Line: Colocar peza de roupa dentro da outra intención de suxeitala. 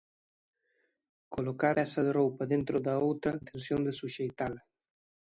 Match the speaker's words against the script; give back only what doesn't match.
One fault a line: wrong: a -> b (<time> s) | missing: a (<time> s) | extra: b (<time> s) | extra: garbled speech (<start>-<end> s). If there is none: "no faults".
no faults